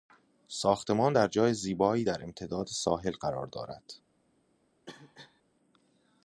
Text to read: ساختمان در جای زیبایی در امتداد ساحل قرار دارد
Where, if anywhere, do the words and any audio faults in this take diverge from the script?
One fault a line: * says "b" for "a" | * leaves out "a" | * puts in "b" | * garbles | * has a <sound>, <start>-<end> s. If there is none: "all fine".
* has a cough, 4.9-5.4 s